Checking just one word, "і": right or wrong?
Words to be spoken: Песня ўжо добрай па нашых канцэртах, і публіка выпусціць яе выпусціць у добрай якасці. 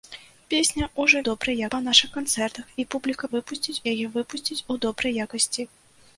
right